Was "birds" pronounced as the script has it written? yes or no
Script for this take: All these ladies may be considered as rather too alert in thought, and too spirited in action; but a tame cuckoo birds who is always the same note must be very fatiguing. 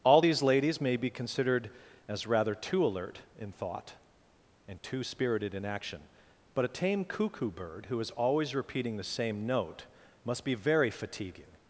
no